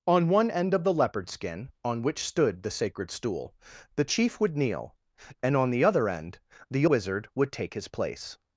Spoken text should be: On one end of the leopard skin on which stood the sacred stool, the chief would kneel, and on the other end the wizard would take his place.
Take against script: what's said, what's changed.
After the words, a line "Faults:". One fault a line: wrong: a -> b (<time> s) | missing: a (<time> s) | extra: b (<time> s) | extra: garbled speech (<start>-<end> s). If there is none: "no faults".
On one end of the leopard skin on which stood the sacred stool, the chief would kneel, and on the other end the wizard would take his place.
Faults:
no faults